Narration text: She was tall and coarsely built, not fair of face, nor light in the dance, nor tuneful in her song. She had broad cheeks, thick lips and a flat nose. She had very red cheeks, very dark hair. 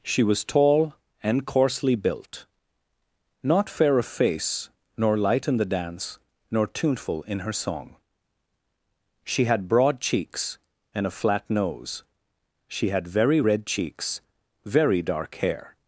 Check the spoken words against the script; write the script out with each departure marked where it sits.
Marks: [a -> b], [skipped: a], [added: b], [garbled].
She was tall and coarsely built, not fair of face, nor light in the dance, nor tuneful in her song. She had broad cheeks, [skipped: thick lips] and a flat nose. She had very red cheeks, very dark hair.